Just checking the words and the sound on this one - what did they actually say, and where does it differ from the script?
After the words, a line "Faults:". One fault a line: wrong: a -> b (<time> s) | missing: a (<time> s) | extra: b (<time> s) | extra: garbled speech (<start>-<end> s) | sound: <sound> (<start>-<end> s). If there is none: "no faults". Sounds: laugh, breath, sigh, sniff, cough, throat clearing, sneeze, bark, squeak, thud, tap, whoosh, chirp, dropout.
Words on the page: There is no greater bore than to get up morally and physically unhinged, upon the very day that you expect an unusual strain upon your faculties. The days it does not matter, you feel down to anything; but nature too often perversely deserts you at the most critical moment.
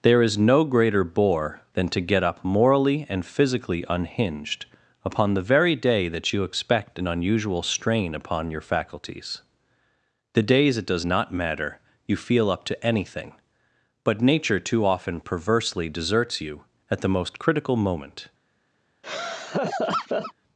There is no greater bore than to get up morally and physically unhinged, upon the very day that you expect an unusual strain upon your faculties. The days it does not matter, you feel up to anything; but nature too often perversely deserts you at the most critical moment.
Faults:
wrong: down -> up (12.5 s)
sound: laugh (19.0-20.3 s)